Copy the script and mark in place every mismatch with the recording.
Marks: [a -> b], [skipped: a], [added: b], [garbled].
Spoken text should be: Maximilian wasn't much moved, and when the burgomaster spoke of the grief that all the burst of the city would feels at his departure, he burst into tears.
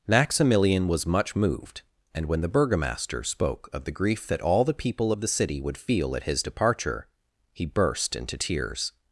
Maximilian [wasn't -> was] much moved, and when the burgomaster spoke of the grief that all the [burst -> people] of the city would [feels -> feel] at his departure, he burst into tears.